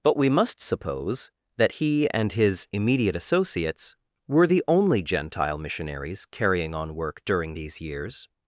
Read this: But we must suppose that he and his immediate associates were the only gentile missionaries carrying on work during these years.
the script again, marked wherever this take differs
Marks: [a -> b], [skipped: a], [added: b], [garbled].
But we must suppose that he and his immediate associates were the only gentile missionaries carrying on work during these years.